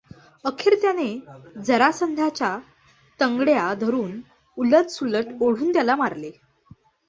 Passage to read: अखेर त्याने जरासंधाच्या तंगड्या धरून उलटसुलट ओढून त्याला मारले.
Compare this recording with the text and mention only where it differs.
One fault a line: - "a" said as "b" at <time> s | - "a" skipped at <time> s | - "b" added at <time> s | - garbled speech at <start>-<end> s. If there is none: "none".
none